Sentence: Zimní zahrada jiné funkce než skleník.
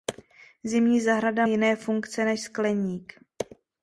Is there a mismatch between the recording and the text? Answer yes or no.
no